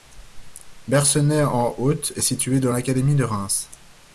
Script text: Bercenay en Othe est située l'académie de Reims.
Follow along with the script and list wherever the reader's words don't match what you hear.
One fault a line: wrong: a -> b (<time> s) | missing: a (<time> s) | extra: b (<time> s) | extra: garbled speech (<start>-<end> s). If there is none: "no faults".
extra: dans (2.6 s)